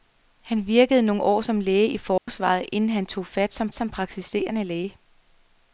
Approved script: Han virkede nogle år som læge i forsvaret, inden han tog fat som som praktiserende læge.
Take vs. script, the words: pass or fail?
pass